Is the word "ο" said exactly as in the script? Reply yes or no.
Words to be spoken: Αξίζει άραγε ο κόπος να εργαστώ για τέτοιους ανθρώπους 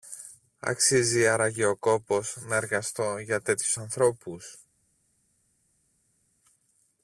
yes